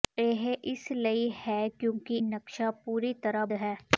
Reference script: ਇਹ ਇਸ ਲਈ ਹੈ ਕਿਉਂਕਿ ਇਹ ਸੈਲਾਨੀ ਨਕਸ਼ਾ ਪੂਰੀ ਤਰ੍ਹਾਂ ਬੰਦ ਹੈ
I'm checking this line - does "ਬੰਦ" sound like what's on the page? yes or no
no